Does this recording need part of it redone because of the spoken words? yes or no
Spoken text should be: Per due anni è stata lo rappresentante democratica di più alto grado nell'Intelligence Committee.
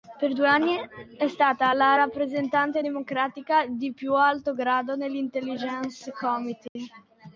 yes